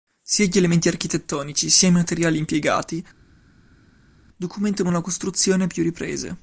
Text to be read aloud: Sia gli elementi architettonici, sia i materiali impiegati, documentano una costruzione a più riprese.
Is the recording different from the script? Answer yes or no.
no